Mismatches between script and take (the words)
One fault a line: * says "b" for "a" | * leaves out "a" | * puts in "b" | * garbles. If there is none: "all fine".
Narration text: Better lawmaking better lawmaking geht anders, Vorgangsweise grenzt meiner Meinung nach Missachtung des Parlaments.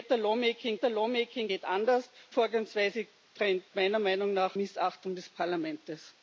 all fine